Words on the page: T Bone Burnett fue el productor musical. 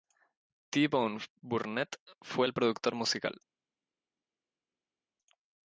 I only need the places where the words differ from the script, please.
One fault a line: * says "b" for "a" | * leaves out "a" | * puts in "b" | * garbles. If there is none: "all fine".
all fine